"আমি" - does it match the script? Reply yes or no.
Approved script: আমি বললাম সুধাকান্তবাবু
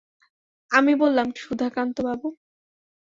yes